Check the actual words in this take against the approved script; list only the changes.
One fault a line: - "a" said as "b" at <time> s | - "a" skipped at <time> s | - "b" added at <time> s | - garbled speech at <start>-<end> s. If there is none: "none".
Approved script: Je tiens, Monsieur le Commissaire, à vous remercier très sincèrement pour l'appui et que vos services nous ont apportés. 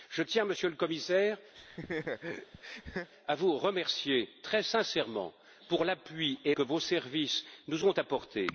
none